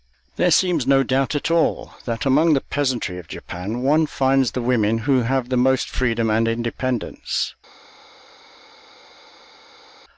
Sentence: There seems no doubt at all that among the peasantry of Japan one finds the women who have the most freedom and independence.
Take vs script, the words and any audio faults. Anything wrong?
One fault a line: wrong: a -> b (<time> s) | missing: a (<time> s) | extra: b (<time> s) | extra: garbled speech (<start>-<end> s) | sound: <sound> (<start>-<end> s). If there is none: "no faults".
no faults